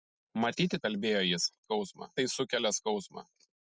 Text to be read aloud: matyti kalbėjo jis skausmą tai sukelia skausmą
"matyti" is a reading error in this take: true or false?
false